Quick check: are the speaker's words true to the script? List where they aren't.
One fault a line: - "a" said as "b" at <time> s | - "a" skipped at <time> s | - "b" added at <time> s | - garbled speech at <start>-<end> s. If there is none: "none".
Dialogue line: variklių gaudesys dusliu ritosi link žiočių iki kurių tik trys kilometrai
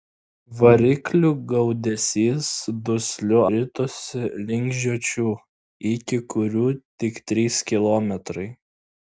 none